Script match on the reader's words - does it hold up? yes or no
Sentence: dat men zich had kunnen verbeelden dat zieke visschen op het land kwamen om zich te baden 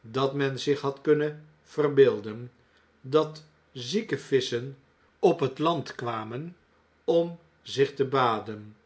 yes